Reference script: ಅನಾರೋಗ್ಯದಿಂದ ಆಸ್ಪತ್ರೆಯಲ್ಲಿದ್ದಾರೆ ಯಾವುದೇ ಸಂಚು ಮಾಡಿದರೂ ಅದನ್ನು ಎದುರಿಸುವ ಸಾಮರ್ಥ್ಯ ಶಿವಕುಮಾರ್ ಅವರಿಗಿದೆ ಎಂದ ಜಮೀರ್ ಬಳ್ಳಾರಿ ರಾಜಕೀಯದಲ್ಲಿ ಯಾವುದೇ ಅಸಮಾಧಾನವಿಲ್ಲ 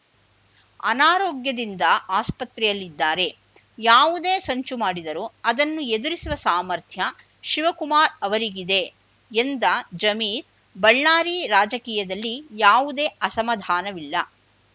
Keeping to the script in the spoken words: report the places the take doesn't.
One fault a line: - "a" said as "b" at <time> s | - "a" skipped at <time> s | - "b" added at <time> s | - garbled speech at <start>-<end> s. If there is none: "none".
none